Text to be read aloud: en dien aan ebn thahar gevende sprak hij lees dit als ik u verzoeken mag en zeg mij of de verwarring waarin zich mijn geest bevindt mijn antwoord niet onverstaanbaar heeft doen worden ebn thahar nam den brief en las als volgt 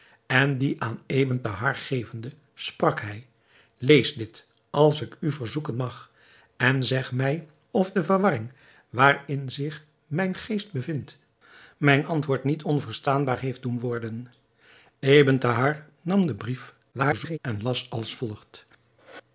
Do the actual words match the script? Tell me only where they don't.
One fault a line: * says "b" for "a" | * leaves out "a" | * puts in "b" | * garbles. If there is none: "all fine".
* garbles